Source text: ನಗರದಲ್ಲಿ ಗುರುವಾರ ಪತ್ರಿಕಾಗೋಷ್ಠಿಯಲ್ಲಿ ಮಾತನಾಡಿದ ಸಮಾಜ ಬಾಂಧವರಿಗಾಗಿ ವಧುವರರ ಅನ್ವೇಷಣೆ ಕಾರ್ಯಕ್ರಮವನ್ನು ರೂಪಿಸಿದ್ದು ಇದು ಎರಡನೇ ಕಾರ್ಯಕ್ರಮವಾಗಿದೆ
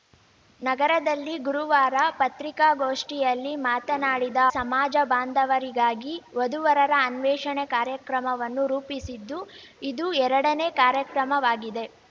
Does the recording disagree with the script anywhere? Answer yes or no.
no